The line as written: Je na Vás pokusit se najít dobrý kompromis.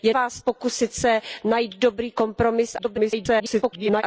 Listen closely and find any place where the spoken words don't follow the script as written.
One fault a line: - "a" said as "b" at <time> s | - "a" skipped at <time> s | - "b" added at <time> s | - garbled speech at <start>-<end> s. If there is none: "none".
- "na" skipped at 0.1 s
- garbled speech at 2.8-4.0 s